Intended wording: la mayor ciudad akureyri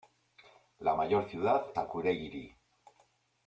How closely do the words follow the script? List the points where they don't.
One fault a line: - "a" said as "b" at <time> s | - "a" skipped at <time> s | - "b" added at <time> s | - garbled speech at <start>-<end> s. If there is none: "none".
none